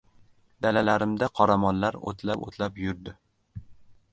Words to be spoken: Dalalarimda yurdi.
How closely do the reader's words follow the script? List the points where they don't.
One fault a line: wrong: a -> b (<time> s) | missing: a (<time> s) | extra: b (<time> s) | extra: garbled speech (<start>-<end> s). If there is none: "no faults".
extra: qoramollar o‘tlab o‘tlab (1.4 s)